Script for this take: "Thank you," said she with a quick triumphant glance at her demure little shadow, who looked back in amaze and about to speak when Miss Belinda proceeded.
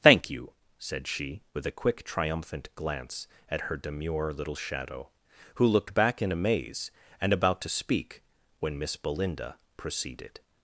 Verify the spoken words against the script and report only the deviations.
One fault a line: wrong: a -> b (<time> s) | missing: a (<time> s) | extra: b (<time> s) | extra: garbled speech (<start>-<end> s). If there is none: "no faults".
no faults